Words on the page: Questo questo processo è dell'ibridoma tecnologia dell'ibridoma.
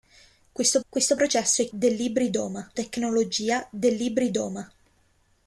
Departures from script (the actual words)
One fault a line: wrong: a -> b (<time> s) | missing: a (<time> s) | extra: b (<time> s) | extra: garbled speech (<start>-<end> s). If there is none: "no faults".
no faults